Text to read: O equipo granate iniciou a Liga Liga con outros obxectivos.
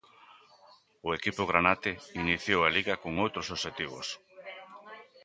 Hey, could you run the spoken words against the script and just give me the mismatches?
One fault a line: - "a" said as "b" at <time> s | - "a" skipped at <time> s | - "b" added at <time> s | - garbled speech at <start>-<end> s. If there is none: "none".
- "Liga" skipped at 3.0 s